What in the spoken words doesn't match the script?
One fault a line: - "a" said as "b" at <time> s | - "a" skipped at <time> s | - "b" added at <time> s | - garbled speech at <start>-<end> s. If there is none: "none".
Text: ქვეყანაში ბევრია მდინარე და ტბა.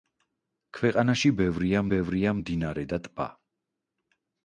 - "ბევრია" added at 1.9 s